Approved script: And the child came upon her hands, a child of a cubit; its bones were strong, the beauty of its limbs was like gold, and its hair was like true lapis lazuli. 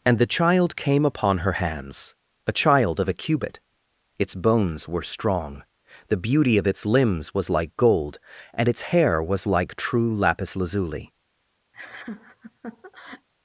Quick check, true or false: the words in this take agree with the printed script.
true